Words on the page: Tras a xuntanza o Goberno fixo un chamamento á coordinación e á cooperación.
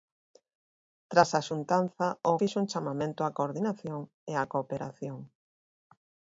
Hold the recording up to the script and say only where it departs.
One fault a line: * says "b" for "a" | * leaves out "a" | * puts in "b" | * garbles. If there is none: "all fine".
* leaves out "Goberno"